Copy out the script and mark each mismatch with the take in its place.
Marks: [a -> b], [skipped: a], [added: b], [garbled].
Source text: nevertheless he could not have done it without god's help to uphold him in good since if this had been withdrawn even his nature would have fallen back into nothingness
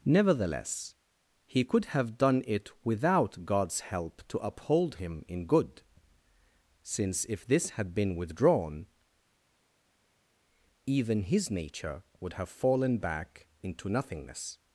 nevertheless he could [skipped: not] have done it without god's help to uphold him in good since if this had been withdrawn even his nature would have fallen back into nothingness